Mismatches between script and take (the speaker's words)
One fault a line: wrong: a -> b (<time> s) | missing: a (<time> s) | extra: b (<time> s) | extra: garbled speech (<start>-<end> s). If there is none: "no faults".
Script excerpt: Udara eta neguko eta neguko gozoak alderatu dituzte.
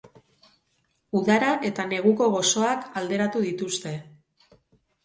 missing: eta neguko (2.3 s)